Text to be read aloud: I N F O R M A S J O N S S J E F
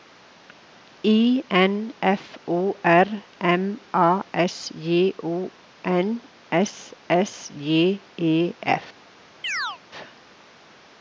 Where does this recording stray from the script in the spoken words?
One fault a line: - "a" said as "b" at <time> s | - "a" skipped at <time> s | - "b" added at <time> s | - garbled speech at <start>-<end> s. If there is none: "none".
none